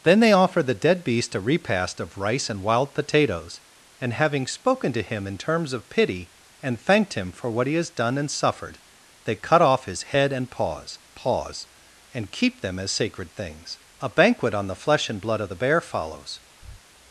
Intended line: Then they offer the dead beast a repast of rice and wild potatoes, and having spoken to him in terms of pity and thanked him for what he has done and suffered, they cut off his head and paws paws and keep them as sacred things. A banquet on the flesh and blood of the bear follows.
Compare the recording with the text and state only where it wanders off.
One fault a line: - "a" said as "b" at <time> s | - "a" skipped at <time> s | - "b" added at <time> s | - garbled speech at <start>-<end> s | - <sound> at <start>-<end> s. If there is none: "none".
- breath at 16.6-16.8 s